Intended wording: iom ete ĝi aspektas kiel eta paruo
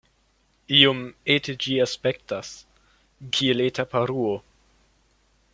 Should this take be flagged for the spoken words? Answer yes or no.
no